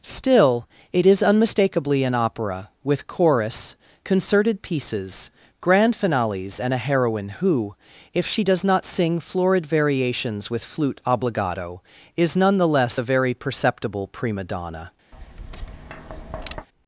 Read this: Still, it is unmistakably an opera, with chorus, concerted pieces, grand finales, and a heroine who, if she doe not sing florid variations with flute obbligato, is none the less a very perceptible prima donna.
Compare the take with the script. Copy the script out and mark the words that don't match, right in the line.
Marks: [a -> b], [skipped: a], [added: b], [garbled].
Still, it is unmistakably an opera, with chorus, concerted pieces, grand finales, and a heroine who, if she [doe -> does] not sing florid variations with flute obbligato, is none the less a very perceptible prima donna.